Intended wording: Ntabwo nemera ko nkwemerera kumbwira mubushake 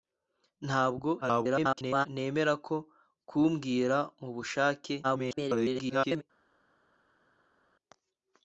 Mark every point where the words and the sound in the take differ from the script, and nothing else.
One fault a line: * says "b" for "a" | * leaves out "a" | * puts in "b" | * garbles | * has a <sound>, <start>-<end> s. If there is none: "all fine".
* garbles
* leaves out "nkwemerera"
* garbles